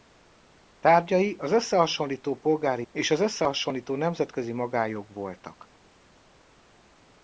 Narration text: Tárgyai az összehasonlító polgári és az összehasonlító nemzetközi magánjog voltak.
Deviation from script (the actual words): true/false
false